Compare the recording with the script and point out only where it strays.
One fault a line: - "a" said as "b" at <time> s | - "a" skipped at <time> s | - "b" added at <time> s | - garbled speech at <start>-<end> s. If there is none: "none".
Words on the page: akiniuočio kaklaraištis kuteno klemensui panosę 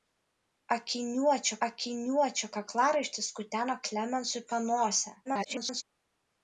- "akiniuočio" added at 1.7 s
- garbled speech at 5.3-5.8 s